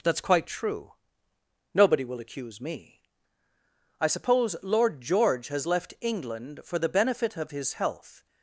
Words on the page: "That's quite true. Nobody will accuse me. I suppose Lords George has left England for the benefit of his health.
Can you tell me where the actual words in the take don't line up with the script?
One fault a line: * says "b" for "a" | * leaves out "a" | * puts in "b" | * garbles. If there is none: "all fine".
* says "Lord" for "Lords"